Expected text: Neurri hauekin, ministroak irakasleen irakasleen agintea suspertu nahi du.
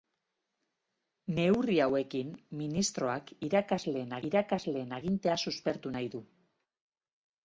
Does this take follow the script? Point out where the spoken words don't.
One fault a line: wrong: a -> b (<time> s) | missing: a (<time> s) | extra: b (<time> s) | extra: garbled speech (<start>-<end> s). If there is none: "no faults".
no faults